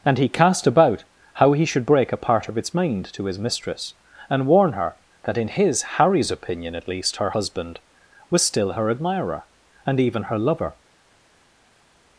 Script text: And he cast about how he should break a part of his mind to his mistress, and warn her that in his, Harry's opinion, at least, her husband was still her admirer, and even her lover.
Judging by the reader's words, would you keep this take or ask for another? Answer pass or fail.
fail